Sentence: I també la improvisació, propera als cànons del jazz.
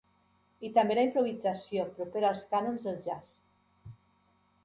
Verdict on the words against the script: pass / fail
pass